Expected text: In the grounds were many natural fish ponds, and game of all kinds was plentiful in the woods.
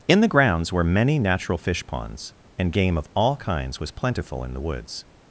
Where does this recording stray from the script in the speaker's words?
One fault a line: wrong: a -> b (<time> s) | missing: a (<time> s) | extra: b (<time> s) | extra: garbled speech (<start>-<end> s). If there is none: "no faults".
no faults